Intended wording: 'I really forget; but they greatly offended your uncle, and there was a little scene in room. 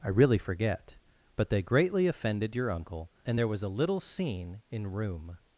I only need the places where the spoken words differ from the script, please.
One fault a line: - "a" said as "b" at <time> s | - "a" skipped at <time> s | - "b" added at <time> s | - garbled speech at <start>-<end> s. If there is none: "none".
none